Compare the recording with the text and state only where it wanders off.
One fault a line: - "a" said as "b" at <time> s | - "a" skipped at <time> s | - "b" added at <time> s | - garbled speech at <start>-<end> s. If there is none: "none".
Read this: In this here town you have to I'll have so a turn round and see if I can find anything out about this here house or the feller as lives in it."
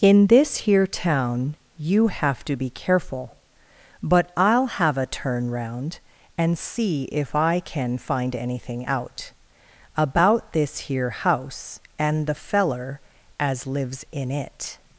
- "be careful But" added at 2.6 s
- "so" skipped at 4.9 s
- "or" said as "and" at 12.0 s